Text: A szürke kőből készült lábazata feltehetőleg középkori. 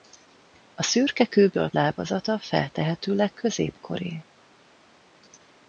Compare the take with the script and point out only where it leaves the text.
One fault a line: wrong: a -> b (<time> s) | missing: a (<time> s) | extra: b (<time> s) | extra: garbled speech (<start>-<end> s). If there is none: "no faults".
missing: készült (1.7 s)